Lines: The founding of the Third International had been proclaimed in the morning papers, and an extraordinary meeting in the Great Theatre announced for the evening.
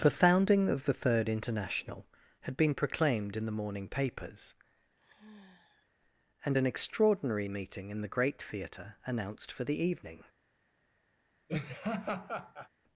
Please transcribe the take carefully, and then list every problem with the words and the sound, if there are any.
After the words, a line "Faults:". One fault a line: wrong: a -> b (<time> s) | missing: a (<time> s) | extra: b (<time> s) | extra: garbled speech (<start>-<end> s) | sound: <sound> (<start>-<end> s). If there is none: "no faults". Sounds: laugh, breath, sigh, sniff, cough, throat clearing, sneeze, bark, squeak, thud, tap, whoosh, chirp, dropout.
The founding of the Third International had been proclaimed in the morning papers, and an extraordinary meeting in the Great Theatre announced for the evening.
Faults:
sound: sigh (5.0-5.9 s)
sound: laugh (11.5-12.7 s)